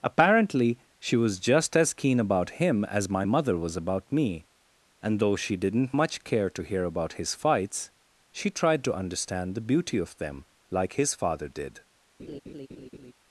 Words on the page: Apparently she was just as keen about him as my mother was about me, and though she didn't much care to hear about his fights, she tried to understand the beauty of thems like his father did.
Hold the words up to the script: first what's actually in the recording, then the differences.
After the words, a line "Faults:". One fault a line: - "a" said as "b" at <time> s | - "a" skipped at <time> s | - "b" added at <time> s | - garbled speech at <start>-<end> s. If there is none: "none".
Apparently she was just as keen about him as my mother was about me, and though she didn't much care to hear about his fights, she tried to understand the beauty of them like his father did.
Faults:
- "thems" said as "them" at 10.2 s